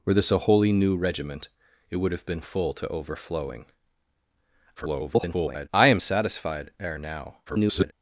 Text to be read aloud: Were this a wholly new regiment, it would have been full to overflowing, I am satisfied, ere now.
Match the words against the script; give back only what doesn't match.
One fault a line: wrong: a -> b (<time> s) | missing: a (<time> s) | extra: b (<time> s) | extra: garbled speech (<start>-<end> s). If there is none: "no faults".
extra: garbled speech (4.8-5.7 s)
extra: garbled speech (7.5-7.9 s)